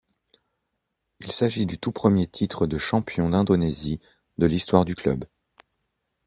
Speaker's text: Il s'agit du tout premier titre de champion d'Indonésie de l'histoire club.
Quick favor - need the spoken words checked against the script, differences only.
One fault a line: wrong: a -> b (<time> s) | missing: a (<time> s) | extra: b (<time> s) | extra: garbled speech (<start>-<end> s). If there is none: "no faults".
extra: du (4.8 s)